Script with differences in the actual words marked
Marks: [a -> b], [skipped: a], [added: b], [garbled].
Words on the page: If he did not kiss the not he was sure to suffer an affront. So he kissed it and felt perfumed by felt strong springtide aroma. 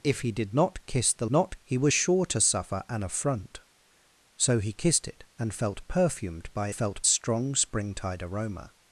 If he did not kiss the not he was sure to suffer an affront. So he kissed it and felt perfumed by felt strong springtide aroma.